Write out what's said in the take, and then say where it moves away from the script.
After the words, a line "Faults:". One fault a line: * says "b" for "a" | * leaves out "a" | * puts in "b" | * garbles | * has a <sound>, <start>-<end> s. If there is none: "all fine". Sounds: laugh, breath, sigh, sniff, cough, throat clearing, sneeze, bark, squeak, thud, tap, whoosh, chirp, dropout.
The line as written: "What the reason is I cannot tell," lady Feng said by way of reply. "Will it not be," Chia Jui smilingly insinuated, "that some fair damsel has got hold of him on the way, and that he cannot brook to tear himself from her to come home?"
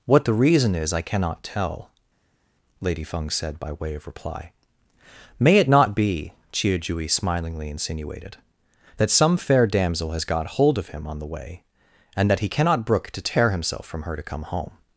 "What the reason is I cannot tell," lady Feng said by way of reply. "May it not be," Chia Jui smilingly insinuated, "that some fair damsel has got hold of him on the way, and that he cannot brook to tear himself from her to come home?"
Faults:
* says "May" for "Will"